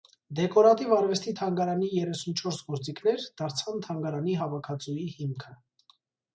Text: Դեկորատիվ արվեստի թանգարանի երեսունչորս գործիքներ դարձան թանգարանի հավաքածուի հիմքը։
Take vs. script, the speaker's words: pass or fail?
pass